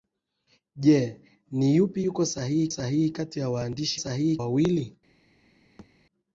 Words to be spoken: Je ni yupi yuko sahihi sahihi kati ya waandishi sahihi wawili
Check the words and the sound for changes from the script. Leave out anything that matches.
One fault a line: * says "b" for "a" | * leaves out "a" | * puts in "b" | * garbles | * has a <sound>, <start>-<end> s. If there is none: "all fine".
* has a thud, 5.8-5.9 s